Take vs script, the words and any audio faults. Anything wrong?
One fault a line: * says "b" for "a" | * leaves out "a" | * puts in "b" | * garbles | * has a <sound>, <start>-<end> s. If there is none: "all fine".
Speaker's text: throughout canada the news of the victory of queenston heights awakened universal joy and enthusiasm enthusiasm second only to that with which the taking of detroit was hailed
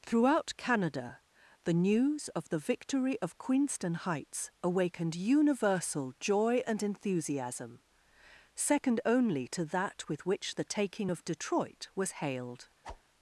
* leaves out "enthusiasm"
* has a whoosh, 12.8-13.0 s